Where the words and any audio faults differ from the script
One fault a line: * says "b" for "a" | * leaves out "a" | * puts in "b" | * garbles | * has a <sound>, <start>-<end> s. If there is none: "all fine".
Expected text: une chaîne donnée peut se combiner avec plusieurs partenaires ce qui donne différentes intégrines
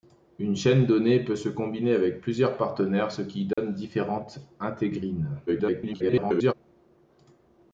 * has a dropout, 3.5-3.6 s
* garbles